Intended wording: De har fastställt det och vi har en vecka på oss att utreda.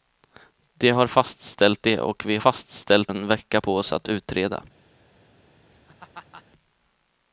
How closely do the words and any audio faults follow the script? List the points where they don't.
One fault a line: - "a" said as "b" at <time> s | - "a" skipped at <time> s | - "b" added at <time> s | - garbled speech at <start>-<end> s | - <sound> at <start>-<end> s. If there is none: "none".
- "har" said as "fastställt" at 2.4 s
- laugh at 5.7-6.4 s